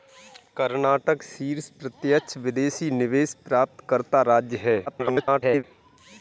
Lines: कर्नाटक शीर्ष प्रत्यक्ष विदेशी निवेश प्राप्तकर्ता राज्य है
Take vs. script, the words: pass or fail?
fail